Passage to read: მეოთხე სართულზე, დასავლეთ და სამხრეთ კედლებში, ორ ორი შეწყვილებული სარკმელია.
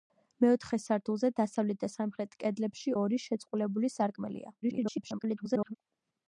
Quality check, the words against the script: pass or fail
fail